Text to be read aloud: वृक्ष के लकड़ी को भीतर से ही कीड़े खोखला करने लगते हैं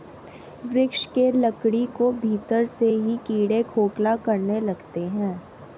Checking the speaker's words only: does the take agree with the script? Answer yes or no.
yes